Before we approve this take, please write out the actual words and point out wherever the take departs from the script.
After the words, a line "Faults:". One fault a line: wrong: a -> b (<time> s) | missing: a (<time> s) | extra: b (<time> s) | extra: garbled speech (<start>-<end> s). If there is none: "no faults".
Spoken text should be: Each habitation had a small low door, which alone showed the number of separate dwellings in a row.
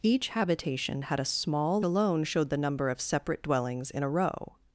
Each habitation had a small alone showed the number of separate dwellings in a row.
Faults:
missing: low door which (1.8 s)